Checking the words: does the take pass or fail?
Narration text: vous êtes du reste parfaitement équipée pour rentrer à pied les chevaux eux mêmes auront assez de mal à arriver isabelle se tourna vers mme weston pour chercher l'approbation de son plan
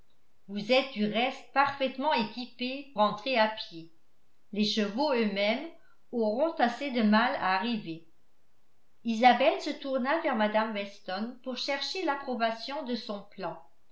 fail